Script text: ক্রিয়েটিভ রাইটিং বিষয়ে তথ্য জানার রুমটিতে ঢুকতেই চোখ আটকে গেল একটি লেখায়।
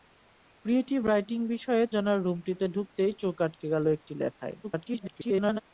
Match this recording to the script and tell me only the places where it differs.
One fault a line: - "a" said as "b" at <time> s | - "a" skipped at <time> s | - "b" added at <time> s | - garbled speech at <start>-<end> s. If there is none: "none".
- "তথ্য" skipped at 1.8 s
- garbled speech at 4.6-5.6 s